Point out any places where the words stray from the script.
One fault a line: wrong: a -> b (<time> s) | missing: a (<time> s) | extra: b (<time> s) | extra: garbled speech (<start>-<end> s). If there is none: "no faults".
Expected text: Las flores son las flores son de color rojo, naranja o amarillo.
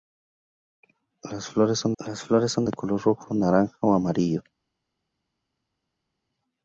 no faults